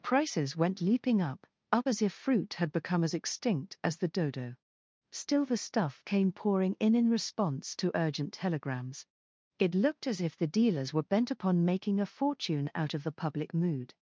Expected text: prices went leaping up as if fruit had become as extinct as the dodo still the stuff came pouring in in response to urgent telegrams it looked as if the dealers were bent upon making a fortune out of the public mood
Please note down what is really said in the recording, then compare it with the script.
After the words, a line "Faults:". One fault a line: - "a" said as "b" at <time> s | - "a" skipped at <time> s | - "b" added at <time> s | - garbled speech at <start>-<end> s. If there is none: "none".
prices went leaping up up as if fruit had become as extinct as the dodo still the stuff came pouring in in response to urgent telegrams it looked as if the dealers were bent upon making a fortune out of the public mood
Faults:
- "up" added at 1.7 s